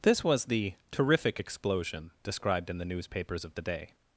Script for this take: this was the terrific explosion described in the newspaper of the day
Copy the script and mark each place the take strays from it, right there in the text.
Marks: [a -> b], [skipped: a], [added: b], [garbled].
this was the terrific explosion described in the [newspaper -> newspapers] of the day